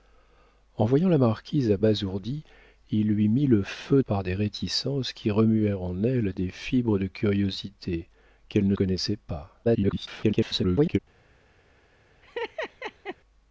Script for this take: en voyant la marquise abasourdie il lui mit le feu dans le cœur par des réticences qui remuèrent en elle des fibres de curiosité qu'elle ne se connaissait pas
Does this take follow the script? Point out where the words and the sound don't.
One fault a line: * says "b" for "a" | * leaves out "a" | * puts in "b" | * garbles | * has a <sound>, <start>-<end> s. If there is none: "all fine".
* leaves out "dans le cœur"
* leaves out "se"
* garbles
* has a laugh, 12.2-13.2 s